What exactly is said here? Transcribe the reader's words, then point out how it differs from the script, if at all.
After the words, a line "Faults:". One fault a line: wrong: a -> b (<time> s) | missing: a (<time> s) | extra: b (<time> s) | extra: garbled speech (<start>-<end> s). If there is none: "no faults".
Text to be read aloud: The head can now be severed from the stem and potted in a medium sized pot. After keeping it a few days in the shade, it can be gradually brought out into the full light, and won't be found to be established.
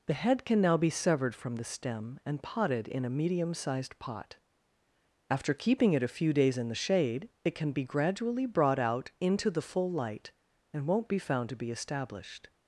The head can now be severed from the stem and potted in a medium sized pot. After keeping it a few days in the shade, it can be gradually brought out into the full light, and won't be found to be established.
Faults:
no faults